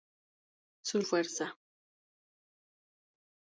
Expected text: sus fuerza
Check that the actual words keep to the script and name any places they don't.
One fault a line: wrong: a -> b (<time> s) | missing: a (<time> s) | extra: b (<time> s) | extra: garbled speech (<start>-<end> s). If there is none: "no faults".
no faults